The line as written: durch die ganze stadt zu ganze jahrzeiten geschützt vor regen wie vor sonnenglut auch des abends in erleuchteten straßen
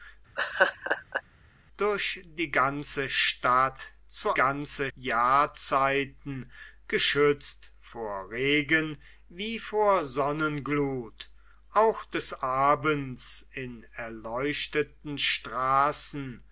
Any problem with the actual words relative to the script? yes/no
no